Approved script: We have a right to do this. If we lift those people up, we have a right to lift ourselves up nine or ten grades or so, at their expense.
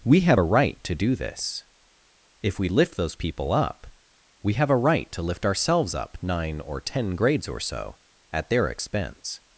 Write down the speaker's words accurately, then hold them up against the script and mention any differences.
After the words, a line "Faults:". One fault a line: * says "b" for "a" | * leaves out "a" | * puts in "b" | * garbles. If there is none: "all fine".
We have a right to do this. If we lift those people up, we have a right to lift ourselves up nine or ten grades or so, at their expense.
Faults:
all fine